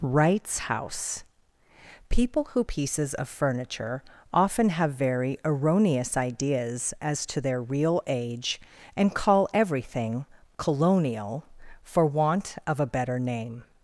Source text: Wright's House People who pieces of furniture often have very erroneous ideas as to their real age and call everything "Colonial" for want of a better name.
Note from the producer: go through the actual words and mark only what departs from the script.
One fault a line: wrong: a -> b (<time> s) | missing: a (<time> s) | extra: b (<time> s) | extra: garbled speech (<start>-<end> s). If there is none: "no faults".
no faults